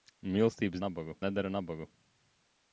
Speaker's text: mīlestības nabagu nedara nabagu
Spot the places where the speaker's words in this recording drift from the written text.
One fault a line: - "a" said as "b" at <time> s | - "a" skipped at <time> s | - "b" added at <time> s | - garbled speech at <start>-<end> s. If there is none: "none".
none